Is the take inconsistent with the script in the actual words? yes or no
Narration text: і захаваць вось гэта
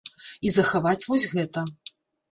no